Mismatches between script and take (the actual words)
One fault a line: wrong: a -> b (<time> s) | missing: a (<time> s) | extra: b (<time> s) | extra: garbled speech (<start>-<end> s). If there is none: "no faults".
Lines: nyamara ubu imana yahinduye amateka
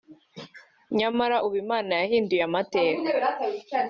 no faults